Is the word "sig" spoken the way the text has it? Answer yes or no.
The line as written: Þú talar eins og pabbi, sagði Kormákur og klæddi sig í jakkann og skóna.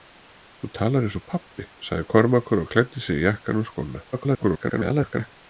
yes